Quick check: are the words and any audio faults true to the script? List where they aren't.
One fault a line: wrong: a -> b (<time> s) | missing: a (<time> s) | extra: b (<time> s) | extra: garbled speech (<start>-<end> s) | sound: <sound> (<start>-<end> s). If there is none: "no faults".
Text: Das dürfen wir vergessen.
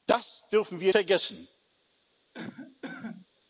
sound: cough (2.3-3.3 s)